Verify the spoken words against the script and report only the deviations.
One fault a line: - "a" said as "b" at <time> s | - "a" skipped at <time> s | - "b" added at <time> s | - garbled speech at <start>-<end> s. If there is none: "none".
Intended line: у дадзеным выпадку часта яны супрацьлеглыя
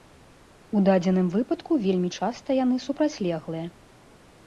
- "вельмі" added at 1.9 s